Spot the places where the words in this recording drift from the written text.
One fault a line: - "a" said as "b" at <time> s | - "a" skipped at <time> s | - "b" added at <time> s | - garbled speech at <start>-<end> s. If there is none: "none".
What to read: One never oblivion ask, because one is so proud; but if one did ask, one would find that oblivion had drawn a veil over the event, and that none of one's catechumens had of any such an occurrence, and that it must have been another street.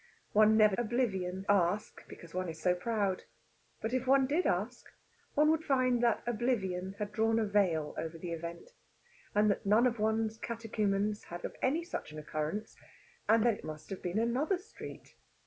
none